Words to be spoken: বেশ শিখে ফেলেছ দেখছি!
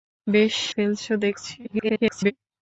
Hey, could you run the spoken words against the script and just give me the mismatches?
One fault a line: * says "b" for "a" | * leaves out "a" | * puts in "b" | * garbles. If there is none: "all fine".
* leaves out "শিখে"
* garbles